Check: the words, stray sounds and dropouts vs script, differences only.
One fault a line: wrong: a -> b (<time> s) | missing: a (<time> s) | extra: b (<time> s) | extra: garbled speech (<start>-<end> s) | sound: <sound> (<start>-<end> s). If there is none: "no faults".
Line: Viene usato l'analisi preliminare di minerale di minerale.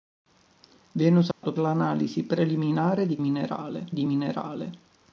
sound: dropout (1.3-1.4 s)